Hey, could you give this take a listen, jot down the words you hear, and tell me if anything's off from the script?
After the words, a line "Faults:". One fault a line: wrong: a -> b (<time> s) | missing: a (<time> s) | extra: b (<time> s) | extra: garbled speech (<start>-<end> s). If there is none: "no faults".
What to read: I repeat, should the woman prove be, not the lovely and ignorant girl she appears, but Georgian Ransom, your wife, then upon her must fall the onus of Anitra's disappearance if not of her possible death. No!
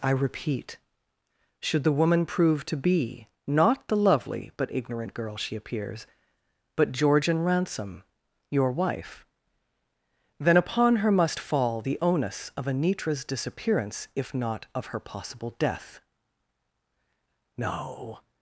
I repeat, should the woman prove to be, not the lovely but ignorant girl she appears, but Georgian Ransom, your wife, then upon her must fall the onus of Anitra's disappearance if not of her possible death. No!
Faults:
extra: to (2.6 s)
wrong: and -> but (4.6 s)